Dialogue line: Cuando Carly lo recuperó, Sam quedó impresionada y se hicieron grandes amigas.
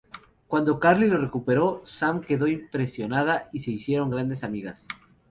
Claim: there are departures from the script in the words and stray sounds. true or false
false